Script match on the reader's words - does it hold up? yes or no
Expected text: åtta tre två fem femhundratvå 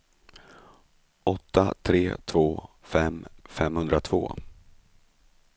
yes